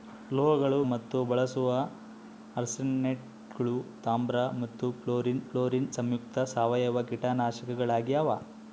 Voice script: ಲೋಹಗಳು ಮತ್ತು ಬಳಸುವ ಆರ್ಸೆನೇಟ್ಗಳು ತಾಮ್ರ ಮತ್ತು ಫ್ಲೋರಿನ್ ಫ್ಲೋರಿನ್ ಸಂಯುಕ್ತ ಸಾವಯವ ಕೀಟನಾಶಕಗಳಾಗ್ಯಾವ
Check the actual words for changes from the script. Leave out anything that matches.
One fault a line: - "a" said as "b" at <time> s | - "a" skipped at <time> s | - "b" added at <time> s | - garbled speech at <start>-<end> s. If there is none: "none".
none